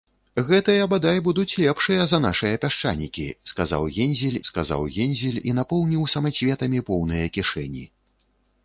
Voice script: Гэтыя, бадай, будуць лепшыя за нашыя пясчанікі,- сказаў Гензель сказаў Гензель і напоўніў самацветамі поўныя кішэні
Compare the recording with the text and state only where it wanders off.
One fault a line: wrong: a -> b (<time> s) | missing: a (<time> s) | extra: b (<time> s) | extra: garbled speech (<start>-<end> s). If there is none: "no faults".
no faults